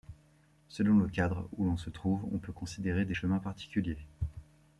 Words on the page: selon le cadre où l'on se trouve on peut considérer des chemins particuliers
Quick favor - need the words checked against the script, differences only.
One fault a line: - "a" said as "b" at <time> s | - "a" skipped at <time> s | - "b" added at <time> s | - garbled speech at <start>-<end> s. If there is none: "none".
none